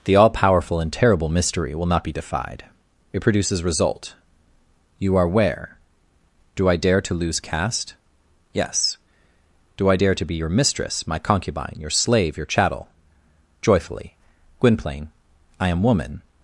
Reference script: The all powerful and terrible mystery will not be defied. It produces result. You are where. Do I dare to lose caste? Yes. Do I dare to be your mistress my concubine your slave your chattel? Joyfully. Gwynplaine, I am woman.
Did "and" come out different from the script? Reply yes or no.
no